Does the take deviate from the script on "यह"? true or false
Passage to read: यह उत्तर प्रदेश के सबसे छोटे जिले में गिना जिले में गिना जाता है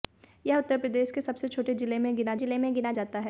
false